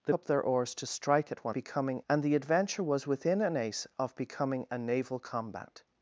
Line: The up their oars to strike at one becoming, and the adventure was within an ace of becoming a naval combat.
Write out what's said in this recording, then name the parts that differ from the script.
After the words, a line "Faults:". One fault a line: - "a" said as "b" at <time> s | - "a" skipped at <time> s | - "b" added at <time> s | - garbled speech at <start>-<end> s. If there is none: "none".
The up their oars to strike at one becoming, and the adventure was within an ace of becoming a naval combat.
Faults:
none